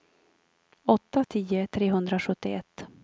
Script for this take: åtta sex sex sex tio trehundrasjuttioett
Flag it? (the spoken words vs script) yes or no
yes